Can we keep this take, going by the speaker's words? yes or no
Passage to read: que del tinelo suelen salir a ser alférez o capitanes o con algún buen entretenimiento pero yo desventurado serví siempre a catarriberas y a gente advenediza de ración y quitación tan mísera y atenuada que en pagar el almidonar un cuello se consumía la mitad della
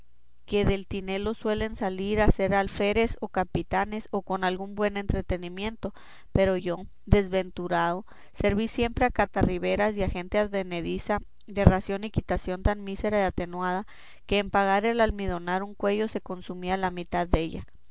yes